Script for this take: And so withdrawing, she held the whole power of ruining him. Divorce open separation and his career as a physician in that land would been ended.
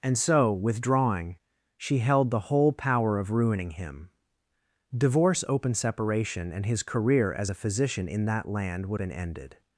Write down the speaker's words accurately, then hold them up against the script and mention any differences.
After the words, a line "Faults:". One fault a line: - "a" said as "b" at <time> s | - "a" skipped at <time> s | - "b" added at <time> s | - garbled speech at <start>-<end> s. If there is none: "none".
And so withdrawing, she held the whole power of ruining him. Divorce open separation and his career as a physician in that land would been ended.
Faults:
none